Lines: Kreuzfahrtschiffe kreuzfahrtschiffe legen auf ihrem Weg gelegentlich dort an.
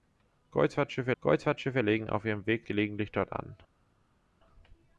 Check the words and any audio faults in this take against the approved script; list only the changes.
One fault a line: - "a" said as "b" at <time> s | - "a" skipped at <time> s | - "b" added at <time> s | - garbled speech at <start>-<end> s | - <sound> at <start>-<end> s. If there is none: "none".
none